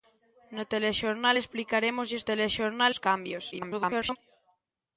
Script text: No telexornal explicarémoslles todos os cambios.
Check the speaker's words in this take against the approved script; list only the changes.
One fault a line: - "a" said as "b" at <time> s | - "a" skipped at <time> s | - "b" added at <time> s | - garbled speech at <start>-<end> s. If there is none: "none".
- "todos" said as "telexornal" at 2.3 s
- garbled speech at 3.5-4.2 s